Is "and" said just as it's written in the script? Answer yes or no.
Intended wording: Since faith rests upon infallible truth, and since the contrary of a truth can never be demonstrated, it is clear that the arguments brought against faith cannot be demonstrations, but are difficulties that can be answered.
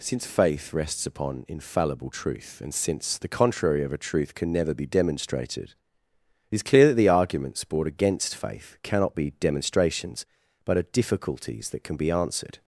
yes